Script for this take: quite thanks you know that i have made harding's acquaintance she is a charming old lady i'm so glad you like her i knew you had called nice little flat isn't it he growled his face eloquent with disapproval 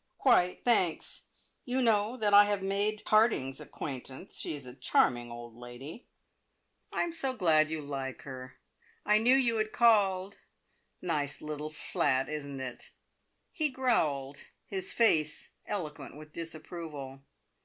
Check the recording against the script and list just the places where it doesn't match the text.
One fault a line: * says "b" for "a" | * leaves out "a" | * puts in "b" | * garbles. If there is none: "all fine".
all fine